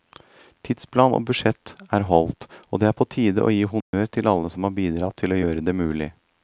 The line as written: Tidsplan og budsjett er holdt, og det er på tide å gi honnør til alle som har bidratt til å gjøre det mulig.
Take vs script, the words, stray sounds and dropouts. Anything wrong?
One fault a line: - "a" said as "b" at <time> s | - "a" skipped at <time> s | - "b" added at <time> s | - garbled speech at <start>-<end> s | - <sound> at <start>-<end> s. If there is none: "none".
- dropout at 3.8-3.9 s